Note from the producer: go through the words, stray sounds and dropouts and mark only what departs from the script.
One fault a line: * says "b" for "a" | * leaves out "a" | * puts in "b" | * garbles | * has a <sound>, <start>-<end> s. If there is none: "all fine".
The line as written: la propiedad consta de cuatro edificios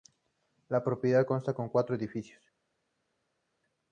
all fine